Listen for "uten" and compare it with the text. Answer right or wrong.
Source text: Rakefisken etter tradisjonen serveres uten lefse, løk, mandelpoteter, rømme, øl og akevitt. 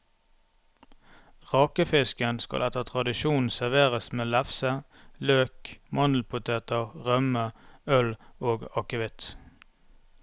wrong